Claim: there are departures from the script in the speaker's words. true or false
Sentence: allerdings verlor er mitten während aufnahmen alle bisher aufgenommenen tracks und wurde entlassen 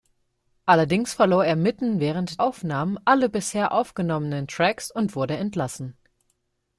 false